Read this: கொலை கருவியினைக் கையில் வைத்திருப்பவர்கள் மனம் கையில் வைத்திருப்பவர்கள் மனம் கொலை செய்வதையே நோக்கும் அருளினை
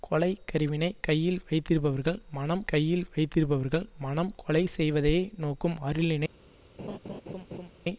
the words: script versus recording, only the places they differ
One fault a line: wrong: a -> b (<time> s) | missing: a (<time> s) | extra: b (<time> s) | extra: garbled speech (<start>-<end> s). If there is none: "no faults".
no faults